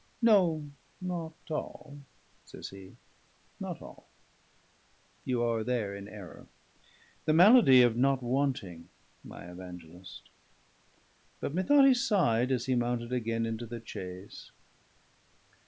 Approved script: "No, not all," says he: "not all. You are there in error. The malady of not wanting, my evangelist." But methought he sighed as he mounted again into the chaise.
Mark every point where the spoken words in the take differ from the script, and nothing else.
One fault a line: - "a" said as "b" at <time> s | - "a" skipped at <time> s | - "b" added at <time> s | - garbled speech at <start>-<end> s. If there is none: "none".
none